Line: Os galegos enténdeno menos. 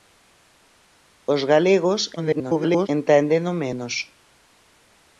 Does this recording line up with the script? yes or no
no